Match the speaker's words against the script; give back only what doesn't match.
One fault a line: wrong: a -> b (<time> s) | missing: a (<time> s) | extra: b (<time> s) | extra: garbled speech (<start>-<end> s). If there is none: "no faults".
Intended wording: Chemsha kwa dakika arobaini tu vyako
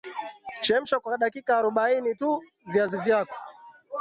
extra: viazi (2.7 s)